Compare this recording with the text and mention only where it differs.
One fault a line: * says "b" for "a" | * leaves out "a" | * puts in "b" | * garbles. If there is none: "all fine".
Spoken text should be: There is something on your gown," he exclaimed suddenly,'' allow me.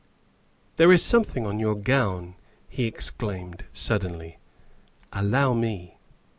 all fine